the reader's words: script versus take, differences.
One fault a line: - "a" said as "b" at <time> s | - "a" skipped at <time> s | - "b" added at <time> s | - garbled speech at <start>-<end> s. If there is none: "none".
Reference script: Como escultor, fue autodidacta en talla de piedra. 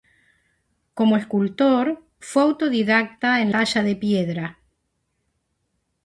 none